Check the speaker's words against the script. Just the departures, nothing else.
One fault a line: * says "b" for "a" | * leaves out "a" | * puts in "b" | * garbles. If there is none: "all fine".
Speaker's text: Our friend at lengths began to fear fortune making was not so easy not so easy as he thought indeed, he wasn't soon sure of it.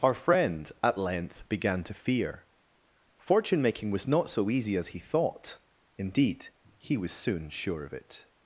* says "length" for "lengths"
* leaves out "not so easy"
* says "was" for "wasn't"